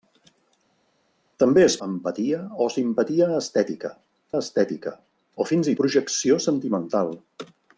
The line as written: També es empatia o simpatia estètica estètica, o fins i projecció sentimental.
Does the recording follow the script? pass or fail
pass